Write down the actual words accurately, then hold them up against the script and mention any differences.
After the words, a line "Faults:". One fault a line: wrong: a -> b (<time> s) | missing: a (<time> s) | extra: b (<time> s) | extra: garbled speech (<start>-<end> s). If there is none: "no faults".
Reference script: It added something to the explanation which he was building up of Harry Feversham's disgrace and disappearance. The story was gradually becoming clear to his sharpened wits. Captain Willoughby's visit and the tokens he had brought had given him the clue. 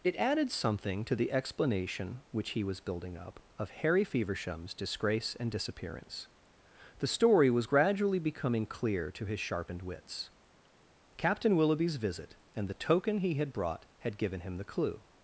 It added something to the explanation which he was building up of Harry Feversham's disgrace and disappearance. The story was gradually becoming clear to his sharpened wits. Captain Willoughby's visit and the token he had brought had given him the clue.
Faults:
wrong: tokens -> token (12.9 s)